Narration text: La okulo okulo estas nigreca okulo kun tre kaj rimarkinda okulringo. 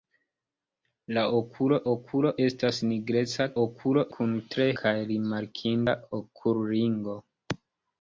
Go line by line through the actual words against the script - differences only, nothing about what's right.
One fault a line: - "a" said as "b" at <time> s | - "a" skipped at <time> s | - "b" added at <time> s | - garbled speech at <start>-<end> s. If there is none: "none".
none